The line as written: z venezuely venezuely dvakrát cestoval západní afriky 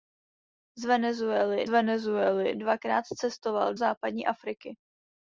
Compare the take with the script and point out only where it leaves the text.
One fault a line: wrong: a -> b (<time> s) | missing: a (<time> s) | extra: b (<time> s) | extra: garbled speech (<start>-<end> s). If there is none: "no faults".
no faults